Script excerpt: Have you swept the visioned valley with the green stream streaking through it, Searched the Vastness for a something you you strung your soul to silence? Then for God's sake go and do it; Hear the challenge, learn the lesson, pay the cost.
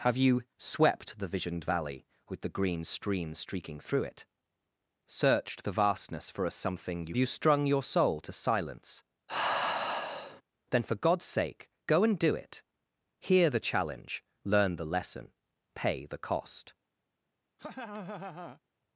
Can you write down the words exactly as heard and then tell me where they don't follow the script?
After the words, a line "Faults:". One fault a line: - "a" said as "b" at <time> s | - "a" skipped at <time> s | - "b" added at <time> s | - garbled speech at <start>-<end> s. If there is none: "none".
Have you swept the visioned valley with the green stream streaking through it, Searched the Vastness for a something you you strung your soul to silence? Then for God's sake go and do it; Hear the challenge, learn the lesson, pay the cost.
Faults:
none